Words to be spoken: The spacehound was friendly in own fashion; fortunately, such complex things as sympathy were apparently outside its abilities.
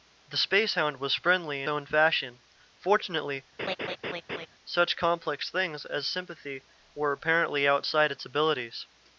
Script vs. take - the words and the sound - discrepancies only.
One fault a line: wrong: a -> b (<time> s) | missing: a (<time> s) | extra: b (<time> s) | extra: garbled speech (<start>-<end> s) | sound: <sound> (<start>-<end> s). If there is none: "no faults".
sound: laugh (3.6-4.5 s)